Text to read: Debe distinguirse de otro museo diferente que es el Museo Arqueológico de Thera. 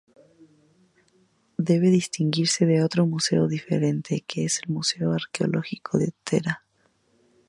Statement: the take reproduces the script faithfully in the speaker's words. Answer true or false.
true